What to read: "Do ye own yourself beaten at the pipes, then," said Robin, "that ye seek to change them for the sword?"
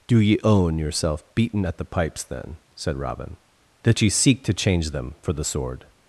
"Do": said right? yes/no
yes